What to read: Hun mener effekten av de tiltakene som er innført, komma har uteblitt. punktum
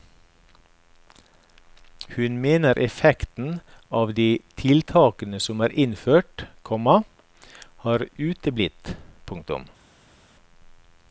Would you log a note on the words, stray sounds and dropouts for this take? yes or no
no